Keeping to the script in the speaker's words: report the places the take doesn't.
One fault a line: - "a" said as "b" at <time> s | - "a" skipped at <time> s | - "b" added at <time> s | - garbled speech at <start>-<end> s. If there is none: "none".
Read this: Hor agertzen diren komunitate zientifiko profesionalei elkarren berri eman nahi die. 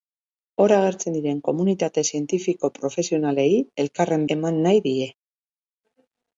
- "berri" skipped at 4.2 s